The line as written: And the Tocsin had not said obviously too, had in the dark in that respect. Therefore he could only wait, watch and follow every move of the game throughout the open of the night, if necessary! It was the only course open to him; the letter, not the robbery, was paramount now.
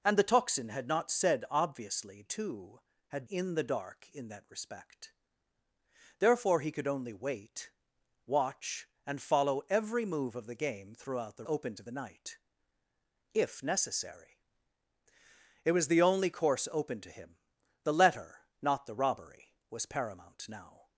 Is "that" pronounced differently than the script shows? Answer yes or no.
no